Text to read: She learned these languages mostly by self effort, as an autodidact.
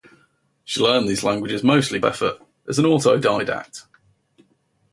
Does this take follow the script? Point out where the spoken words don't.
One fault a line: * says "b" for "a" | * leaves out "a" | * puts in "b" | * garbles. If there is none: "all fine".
* leaves out "by self"